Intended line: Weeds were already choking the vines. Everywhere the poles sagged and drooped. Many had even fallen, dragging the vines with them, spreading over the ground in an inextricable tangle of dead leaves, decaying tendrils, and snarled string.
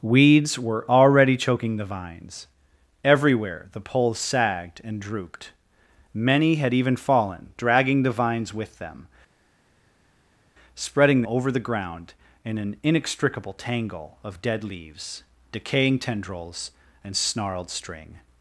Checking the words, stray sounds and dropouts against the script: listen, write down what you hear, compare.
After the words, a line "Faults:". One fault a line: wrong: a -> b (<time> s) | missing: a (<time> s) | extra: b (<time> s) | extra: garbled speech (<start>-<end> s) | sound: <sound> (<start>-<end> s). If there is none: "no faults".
Weeds were already choking the vines. Everywhere the poles sagged and drooped. Many had even fallen, dragging the vines with them, spreading over the ground in an inextricable tangle of dead leaves, decaying tendrils, and snarled string.
Faults:
no faults